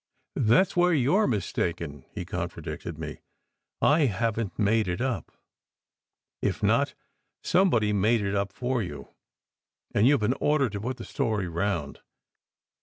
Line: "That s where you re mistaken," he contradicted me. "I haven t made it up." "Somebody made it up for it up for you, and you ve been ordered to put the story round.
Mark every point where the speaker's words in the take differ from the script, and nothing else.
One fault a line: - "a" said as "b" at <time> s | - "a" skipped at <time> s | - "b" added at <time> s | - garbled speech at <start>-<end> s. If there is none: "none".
- "If not" added at 6.4 s
- "it up for" skipped at 8.8 s